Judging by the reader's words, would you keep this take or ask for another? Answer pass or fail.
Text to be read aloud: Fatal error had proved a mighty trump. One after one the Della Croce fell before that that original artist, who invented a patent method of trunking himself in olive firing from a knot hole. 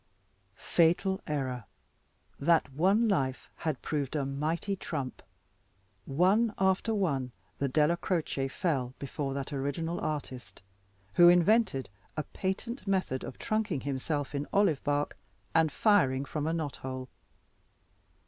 fail